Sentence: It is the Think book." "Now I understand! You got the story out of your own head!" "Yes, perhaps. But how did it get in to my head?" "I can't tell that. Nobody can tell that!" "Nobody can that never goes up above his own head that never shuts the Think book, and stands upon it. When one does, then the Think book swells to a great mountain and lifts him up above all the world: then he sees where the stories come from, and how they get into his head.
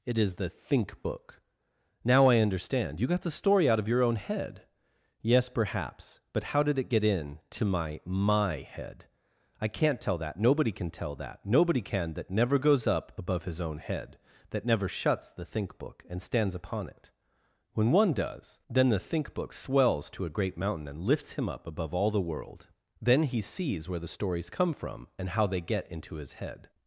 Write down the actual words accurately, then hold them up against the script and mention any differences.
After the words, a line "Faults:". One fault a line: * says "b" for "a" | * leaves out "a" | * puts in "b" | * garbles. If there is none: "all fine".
It is the Think book." "Now I understand! You got the story out of your own head!" "Yes, perhaps. But how did it get in to my my head?" "I can't tell that. Nobody can tell that!" "Nobody can that never goes up above his own head that never shuts the Think book, and stands upon it. When one does, then the Think book swells to a great mountain and lifts him up above all the world: then he sees where the stories come from, and how they get into his head.
Faults:
* puts in "my"